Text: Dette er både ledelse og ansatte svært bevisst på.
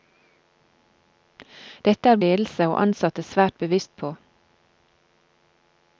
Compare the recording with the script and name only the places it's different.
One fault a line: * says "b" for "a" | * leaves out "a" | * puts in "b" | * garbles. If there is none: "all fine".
* leaves out "både"